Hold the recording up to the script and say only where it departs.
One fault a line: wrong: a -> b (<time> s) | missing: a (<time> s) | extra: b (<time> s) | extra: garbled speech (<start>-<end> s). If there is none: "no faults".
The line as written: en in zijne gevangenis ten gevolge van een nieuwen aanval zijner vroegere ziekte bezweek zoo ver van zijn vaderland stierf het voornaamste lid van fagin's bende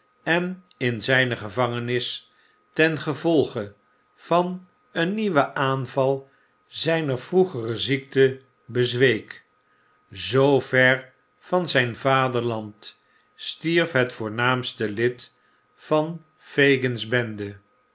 no faults